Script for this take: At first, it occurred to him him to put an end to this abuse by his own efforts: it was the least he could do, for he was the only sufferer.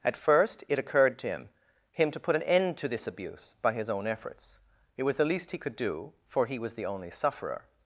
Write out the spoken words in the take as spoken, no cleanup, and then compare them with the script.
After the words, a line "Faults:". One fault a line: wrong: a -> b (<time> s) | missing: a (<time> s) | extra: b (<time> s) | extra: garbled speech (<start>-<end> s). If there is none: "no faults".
At first, it occurred to him him to put an end to this abuse by his own efforts: it was the least he could do, for he was the only sufferer.
Faults:
no faults